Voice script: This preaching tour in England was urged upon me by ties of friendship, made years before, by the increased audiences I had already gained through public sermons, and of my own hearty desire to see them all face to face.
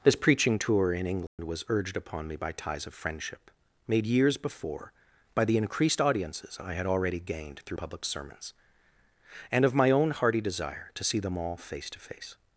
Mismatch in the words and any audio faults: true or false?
true